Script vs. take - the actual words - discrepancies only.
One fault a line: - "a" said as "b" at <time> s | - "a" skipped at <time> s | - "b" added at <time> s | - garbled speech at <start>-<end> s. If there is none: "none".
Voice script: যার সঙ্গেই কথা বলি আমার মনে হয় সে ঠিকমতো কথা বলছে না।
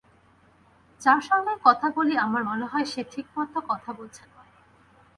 none